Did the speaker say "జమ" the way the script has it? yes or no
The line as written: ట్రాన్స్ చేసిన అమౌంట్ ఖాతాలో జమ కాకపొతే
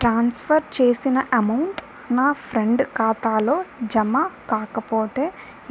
yes